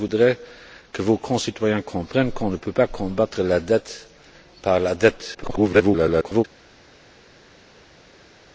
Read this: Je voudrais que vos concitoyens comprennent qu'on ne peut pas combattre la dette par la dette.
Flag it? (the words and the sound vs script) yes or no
yes